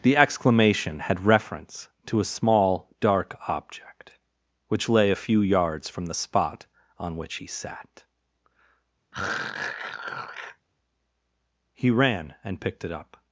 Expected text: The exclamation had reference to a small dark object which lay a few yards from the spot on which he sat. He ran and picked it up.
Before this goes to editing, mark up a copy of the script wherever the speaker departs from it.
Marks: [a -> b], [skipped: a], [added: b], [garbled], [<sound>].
The exclamation had reference to a small dark object which lay a few yards from the spot on which he sat. [throat clearing] He ran and picked it up.